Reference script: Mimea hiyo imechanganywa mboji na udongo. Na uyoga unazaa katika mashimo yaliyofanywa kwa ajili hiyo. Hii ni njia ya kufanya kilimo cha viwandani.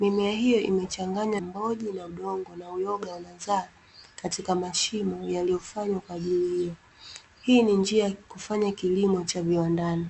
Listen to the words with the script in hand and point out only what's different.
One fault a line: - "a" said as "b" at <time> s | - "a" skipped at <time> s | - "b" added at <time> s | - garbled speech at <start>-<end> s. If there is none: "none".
none